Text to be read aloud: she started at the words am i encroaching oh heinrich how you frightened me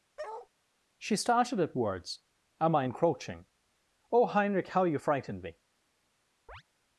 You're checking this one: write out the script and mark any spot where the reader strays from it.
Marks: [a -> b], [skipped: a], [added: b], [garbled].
she started at [skipped: the] words am i encroaching oh heinrich how you frightened me